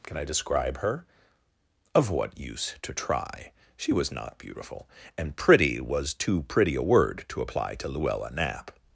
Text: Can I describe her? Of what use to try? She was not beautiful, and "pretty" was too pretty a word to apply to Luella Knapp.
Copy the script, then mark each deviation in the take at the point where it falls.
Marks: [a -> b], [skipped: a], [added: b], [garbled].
Can I describe her? Of what use to try? She was not beautiful, and "pretty" was too pretty a word to apply to Luella Knapp.